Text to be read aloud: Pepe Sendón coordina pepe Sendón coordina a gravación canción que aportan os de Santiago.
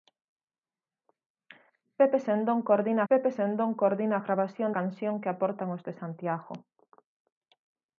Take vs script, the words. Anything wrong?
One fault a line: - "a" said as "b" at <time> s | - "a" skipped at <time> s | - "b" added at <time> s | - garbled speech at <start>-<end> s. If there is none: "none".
none